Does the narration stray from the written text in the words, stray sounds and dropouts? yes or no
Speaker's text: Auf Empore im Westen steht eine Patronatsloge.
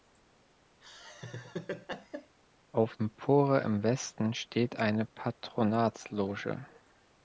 yes